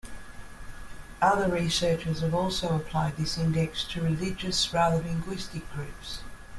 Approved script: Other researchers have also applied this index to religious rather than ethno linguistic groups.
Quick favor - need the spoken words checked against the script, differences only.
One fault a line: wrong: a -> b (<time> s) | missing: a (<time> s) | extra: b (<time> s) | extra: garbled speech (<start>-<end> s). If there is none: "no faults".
missing: than ethno (5.0 s)